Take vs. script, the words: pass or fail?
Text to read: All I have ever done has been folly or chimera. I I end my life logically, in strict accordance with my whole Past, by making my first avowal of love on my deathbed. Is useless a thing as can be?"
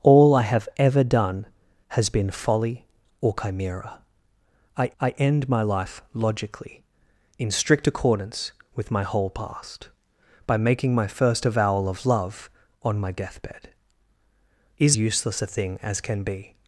pass